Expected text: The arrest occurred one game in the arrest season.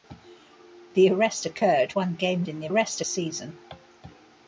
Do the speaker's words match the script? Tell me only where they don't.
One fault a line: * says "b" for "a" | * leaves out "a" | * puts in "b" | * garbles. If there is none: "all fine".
all fine